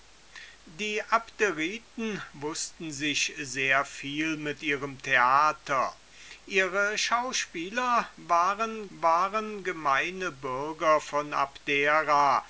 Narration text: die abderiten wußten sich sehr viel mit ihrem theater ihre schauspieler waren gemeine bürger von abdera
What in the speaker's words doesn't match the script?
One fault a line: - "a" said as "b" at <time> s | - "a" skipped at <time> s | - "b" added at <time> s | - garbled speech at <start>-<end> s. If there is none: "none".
- "waren" added at 8.9 s